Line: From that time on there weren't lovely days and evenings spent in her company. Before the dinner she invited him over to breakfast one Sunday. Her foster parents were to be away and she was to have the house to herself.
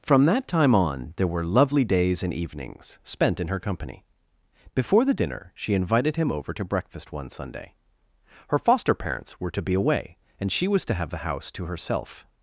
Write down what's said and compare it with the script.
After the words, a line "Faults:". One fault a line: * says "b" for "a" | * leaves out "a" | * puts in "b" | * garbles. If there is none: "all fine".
From that time on there were lovely days and evenings spent in her company. Before the dinner she invited him over to breakfast one Sunday. Her foster parents were to be away and she was to have the house to herself.
Faults:
* says "were" for "weren't"